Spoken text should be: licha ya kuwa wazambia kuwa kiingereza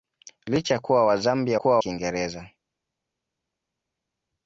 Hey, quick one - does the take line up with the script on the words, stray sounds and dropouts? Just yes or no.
yes